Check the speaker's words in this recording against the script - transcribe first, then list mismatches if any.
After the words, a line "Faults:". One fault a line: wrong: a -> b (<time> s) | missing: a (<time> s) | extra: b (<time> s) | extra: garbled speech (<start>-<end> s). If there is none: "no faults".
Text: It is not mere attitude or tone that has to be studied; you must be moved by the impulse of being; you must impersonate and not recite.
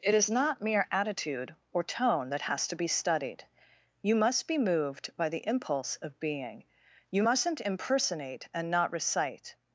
It is not mere attitude or tone that has to be studied; you must be moved by the impulse of being; you mustn't impersonate and not recite.
Faults:
wrong: must -> mustn't (7.2 s)